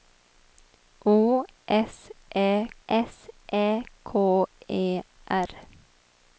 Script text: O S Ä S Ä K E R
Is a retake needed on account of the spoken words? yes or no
no